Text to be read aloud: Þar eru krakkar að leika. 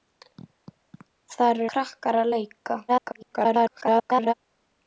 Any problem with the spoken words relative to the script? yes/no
yes